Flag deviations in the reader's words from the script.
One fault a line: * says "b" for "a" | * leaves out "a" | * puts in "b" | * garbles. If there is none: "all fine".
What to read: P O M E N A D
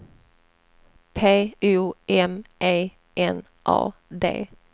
all fine